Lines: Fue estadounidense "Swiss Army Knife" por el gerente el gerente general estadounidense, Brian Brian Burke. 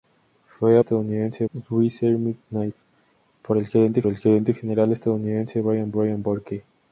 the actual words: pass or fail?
pass